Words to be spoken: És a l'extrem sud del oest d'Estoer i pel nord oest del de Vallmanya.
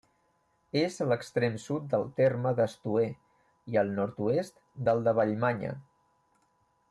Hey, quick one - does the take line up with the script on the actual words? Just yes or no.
no